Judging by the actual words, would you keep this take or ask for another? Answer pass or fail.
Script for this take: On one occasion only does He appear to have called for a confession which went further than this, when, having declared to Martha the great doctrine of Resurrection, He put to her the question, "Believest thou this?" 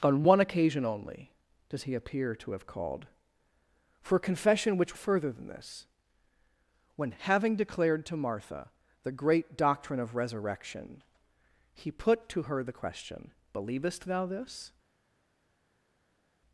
fail